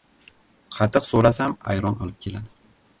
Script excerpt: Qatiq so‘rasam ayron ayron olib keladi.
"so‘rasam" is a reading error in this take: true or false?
false